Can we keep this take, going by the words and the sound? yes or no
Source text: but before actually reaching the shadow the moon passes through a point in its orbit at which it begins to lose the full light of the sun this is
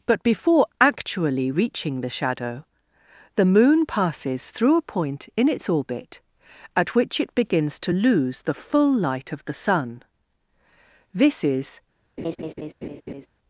no